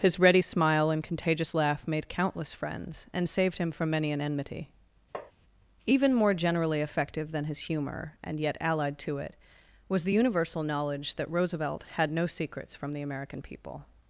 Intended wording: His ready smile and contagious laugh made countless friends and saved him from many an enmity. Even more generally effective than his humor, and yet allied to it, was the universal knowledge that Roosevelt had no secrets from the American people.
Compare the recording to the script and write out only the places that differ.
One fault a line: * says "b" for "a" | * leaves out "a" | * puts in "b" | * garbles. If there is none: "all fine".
all fine